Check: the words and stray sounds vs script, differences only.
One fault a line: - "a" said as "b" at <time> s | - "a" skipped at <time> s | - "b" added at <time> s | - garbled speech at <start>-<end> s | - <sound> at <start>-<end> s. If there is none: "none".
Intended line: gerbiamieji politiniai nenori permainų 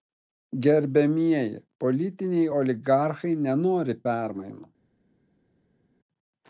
- "oligarchai" added at 2.6 s